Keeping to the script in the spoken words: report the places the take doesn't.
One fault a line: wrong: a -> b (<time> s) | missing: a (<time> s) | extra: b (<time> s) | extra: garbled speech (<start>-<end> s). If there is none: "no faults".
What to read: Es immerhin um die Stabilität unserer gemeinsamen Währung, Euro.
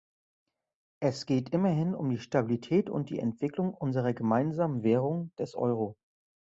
extra: geht (1.2 s)
extra: und die Entwicklung (2.9 s)
extra: des (5.4 s)